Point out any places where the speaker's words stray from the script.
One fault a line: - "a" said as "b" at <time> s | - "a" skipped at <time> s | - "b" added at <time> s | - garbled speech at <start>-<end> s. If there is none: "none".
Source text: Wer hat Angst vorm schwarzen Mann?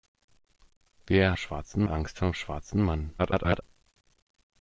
- "hat" said as "schwarzen" at 1.3 s
- garbled speech at 3.2-3.6 s